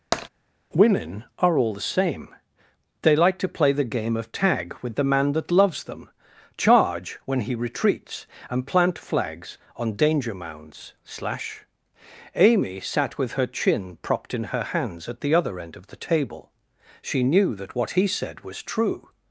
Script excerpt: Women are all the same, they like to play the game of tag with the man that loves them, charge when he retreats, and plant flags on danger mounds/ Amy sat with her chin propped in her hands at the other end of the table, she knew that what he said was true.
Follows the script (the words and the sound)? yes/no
no